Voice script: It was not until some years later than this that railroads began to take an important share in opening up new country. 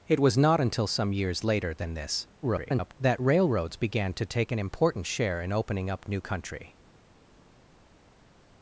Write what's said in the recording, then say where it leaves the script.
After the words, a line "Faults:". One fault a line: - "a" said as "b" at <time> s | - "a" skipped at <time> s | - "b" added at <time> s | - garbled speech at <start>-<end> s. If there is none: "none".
It was not until some years later than this [garbled] that railroads began to take an important share in opening up new country.
Faults:
- garbled speech at 2.4-2.9 s